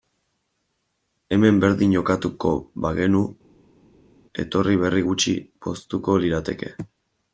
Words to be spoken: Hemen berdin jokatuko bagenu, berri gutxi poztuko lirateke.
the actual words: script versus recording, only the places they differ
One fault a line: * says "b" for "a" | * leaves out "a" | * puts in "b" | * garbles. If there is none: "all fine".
* puts in "etorri"